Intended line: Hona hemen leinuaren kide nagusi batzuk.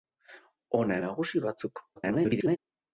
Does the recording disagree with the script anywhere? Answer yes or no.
yes